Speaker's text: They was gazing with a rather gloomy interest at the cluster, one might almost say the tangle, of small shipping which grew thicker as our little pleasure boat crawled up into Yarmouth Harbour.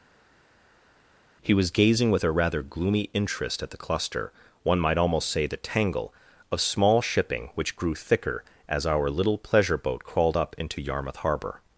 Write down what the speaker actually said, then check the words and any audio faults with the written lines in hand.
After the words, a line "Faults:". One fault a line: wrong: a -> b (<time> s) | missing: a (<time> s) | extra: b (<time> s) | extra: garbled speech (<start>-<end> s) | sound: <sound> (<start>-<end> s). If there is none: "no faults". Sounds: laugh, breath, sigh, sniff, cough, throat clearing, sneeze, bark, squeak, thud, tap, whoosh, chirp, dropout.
He was gazing with a rather gloomy interest at the cluster, one might almost say the tangle, of small shipping which grew thicker as our little pleasure boat crawled up into Yarmouth Harbour.
Faults:
wrong: They -> He (1.4 s)